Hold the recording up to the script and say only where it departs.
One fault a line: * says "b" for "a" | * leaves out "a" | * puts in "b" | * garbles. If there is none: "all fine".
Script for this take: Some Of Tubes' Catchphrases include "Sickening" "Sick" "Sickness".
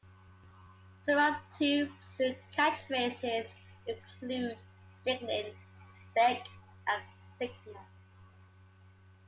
* puts in "and"